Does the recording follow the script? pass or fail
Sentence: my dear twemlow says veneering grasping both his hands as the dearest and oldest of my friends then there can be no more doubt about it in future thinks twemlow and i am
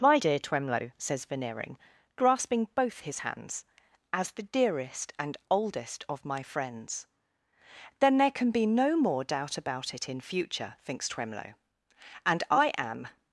pass